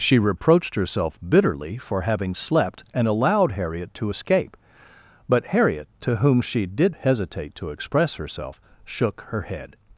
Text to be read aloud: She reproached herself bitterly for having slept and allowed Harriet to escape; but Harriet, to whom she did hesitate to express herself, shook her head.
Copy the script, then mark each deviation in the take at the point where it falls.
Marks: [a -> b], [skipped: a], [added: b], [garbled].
She reproached herself bitterly for having slept and allowed Harriet to escape; but Harriet, to whom she did hesitate to express herself, shook her head.